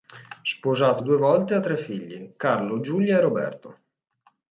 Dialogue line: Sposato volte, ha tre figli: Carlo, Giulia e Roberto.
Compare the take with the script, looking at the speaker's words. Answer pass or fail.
fail